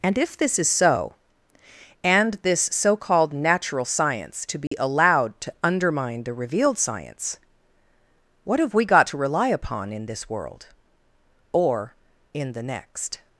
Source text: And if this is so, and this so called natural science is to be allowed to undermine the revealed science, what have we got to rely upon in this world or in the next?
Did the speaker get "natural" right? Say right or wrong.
right